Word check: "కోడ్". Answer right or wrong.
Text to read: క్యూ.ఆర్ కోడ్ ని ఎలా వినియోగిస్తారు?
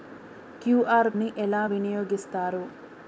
wrong